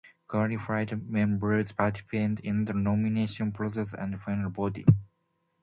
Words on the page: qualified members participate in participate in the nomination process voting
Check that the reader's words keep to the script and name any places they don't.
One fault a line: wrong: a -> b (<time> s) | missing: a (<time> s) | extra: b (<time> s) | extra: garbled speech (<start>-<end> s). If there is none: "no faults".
missing: participate in (2.7 s)
extra: and final (3.9 s)